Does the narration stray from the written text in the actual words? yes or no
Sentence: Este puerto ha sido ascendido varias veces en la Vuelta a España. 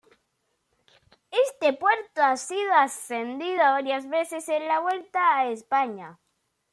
no